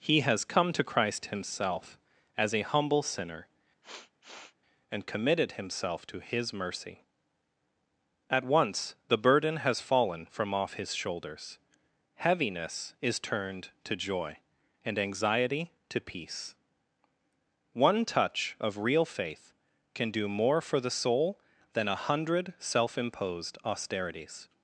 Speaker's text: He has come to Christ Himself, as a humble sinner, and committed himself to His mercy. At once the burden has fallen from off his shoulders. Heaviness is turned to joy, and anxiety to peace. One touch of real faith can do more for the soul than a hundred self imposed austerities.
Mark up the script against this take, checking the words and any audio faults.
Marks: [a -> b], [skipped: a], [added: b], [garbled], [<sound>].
He has come to Christ Himself, as a humble sinner, [sniff] and committed himself to His mercy. At once the burden has fallen from off his shoulders. Heaviness is turned to joy, and anxiety to peace. One touch of real faith can do more for the soul than a hundred self imposed austerities.